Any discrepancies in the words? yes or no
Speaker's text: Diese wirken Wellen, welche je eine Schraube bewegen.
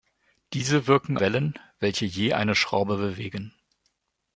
no